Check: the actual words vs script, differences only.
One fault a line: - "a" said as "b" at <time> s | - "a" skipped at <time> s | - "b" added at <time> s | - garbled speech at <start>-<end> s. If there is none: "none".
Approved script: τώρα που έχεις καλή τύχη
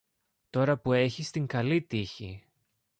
- "την" added at 1.3 s